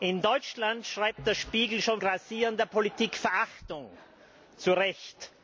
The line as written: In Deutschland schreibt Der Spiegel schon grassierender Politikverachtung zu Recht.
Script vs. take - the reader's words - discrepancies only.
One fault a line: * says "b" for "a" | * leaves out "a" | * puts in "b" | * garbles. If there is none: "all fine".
all fine